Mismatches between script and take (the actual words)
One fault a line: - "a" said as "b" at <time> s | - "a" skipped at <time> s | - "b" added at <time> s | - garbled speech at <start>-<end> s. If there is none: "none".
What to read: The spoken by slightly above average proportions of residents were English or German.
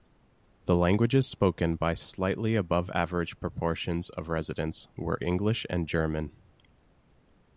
- "languages" added at 0.8 s
- "or" said as "and" at 5.7 s